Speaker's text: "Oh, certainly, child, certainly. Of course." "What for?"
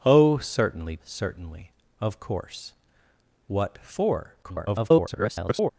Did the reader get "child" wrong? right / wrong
wrong